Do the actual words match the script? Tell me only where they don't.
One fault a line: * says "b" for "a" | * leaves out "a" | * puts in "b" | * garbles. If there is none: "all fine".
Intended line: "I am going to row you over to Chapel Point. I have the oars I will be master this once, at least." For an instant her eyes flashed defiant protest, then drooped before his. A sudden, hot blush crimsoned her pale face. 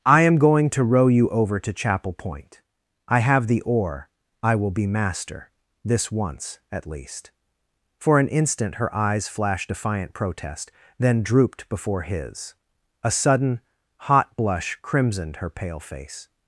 * says "oar" for "oars"